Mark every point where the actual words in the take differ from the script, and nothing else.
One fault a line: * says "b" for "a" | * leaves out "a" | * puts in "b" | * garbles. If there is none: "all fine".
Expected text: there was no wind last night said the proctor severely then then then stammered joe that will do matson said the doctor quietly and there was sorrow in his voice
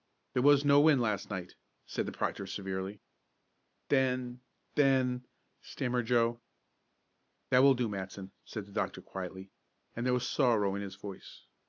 * leaves out "then"